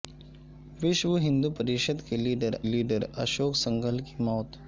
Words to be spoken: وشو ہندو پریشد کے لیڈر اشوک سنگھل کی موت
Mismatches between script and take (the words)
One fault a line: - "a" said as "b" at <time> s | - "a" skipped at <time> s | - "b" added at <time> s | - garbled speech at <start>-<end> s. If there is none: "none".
- "لیڈر" added at 2.6 s